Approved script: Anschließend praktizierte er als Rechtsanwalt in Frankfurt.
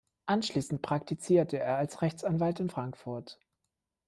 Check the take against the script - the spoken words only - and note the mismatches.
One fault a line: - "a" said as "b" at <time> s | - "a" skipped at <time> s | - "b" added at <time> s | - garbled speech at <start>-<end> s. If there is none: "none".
none